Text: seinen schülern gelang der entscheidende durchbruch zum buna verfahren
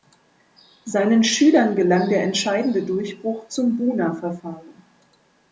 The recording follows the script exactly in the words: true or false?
true